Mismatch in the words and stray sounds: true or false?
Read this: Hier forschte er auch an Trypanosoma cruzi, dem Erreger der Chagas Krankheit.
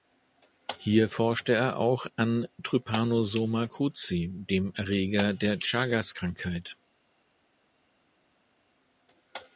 false